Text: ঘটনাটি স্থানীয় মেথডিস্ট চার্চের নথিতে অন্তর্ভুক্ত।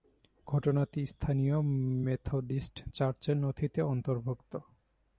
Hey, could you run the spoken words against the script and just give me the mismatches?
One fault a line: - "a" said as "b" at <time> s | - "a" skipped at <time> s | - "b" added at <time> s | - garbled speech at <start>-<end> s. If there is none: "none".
none